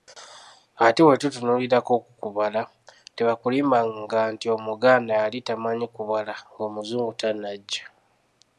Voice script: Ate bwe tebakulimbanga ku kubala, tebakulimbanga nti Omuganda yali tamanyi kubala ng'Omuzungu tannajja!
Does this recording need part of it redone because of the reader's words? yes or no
yes